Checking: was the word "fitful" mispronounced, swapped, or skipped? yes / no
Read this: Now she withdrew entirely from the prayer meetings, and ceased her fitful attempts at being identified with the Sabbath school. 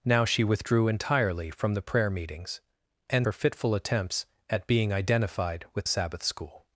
no